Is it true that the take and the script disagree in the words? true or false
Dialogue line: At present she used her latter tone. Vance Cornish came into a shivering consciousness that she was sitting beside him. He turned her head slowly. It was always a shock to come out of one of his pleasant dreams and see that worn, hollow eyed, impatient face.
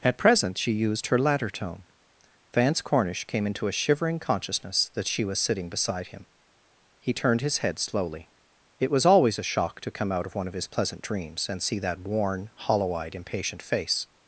true